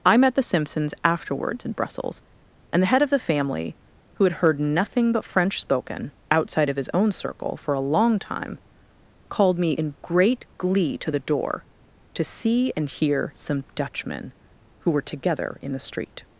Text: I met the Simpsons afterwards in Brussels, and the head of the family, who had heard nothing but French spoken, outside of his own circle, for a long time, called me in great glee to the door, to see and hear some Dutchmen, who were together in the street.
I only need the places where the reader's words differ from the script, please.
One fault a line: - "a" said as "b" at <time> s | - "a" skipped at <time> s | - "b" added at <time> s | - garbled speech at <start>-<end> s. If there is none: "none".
none